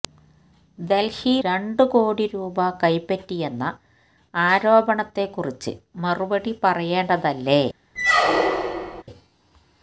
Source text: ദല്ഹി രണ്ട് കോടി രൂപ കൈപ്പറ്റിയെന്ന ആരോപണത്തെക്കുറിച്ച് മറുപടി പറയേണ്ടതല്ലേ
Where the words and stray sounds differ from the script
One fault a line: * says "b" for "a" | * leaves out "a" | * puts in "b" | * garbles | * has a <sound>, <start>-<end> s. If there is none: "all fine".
* has a squeak, 8.0-9.0 s